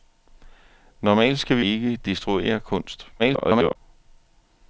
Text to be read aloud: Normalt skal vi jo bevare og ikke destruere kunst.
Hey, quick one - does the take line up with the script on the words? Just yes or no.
no